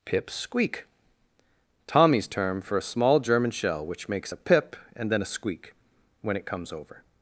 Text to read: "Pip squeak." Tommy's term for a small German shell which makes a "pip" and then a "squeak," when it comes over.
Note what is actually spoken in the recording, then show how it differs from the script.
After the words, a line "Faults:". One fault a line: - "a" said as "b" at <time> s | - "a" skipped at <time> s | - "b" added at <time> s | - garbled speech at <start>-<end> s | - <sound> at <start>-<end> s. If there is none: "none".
"Pip squeak." Tommy's term for a small German shell which makes a "pip" and then a "squeak," when it comes over.
Faults:
none